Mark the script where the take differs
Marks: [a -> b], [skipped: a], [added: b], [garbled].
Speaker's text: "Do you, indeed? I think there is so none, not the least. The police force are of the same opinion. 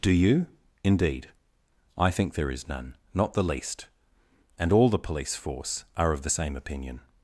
"Do you, indeed? I think there is [skipped: so] none, not the least. [added: And all] The police force are of the same opinion.